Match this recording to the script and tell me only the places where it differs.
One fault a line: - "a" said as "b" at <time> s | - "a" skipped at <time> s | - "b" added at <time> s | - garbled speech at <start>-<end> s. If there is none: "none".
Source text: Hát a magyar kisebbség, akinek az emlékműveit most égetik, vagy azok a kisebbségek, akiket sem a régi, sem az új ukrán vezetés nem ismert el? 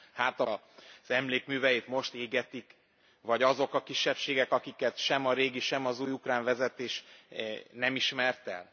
- "magyar kisebbség akinek" skipped at 0.5 s